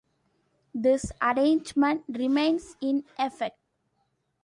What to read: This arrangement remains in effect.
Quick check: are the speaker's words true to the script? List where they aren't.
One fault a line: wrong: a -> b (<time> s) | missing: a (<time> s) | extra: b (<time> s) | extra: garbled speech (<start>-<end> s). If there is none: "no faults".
no faults